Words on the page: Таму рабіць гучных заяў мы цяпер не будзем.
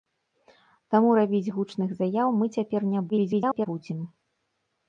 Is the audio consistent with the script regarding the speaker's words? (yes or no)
no